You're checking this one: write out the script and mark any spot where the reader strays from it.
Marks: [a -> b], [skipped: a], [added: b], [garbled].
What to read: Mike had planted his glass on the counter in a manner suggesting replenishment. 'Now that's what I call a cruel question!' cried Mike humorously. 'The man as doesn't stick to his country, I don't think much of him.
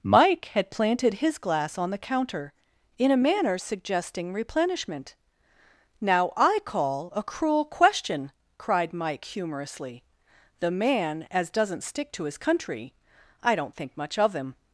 Mike had planted his glass on the counter in a manner suggesting replenishment. 'Now [skipped: that's what] I call a cruel question!' cried Mike humorously. 'The man as doesn't stick to his country, I don't think much of him.